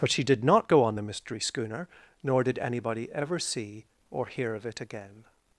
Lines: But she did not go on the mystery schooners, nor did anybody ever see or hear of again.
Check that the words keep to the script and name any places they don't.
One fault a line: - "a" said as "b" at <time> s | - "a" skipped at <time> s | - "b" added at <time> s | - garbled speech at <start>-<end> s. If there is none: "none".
- "schooners" said as "schooner" at 1.4 s
- "it" added at 4.7 s